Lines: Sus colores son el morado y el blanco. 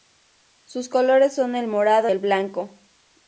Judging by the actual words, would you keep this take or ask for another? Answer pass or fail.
fail